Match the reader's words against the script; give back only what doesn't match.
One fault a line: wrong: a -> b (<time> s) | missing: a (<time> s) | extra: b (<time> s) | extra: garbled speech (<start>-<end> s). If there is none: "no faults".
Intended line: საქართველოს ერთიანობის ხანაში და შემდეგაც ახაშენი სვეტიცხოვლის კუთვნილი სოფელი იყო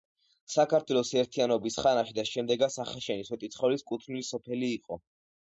no faults